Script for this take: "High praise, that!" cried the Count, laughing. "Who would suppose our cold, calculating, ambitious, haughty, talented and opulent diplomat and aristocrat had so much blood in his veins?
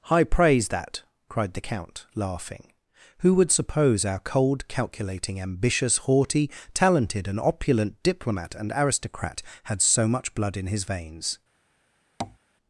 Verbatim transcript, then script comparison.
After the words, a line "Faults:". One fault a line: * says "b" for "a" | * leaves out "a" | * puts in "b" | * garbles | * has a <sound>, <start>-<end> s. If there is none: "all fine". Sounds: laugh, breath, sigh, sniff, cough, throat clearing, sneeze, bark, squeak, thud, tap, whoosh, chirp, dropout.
"High praise, that!" cried the Count, laughing. "Who would suppose our cold, calculating, ambitious, haughty, talented and opulent diplomat and aristocrat had so much blood in his veins?
Faults:
* has a tap, 12.2-12.4 s